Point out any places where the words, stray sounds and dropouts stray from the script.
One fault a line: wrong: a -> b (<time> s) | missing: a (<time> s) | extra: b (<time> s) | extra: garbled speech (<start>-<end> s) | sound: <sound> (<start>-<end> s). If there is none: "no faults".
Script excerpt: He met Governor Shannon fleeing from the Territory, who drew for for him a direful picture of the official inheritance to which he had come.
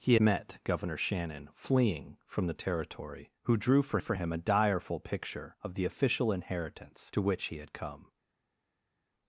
no faults